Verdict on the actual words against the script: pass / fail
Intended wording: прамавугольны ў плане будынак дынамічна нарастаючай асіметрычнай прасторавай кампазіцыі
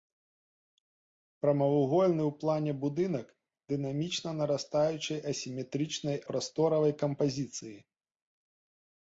pass